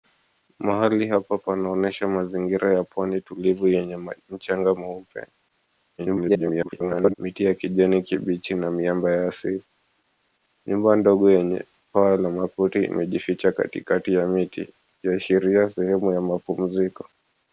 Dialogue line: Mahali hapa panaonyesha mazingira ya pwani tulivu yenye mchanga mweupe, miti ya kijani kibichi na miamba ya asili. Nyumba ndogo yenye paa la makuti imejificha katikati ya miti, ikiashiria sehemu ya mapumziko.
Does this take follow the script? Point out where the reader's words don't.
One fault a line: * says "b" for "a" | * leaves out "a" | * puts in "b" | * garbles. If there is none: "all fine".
* garbles